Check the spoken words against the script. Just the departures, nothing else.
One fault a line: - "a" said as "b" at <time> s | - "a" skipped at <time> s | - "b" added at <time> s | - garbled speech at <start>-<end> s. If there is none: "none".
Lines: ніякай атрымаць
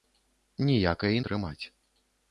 none